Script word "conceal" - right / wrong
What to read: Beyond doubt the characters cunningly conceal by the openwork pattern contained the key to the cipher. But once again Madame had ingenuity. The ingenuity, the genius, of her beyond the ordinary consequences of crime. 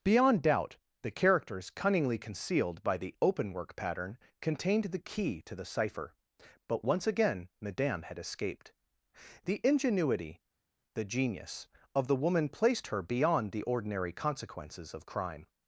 wrong